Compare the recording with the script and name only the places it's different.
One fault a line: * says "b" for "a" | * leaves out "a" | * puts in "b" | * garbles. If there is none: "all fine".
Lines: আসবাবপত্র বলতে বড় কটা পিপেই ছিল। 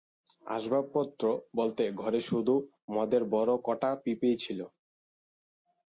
* puts in "ঘরে শুধু মদের"